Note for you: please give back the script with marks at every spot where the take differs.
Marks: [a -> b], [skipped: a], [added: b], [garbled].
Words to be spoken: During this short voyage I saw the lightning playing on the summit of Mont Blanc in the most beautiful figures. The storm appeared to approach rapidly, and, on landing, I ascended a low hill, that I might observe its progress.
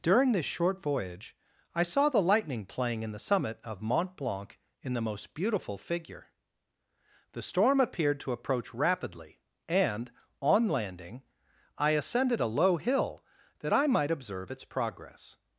During this short voyage I saw the lightning playing [on -> in] the summit of Mont Blanc in the most beautiful [figures. -> figure] The storm appeared to approach rapidly, and, on landing, I ascended a low hill, that I might observe its progress.